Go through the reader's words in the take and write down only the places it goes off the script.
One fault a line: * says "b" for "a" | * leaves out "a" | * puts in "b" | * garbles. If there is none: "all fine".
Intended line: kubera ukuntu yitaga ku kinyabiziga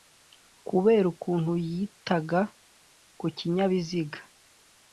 all fine